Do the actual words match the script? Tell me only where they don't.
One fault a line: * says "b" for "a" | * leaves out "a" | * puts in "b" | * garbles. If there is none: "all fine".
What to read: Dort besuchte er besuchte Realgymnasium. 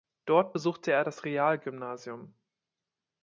* says "das" for "besuchte"